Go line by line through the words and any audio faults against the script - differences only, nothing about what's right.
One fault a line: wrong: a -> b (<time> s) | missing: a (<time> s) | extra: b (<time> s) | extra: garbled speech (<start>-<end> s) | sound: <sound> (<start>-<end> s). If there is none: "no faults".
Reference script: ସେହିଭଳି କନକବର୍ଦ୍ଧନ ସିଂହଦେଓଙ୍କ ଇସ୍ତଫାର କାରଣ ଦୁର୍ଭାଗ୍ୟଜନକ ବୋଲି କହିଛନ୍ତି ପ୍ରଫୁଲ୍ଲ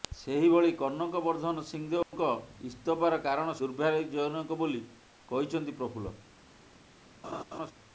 sound: dropout (2.0-2.1 s)
sound: laugh (7.2-7.7 s)